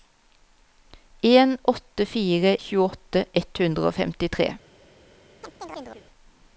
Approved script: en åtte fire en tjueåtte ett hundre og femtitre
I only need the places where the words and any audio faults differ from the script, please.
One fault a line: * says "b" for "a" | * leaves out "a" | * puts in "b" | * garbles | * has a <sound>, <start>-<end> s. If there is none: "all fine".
* leaves out "en"
* has a chirp, 5.4-6.0 s